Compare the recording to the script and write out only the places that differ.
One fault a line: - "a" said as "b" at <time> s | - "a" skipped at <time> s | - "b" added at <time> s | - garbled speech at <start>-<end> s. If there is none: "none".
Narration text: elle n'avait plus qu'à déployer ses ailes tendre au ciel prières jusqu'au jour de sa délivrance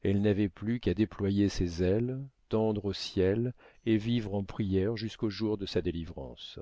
- "et vivre en" added at 3.9 s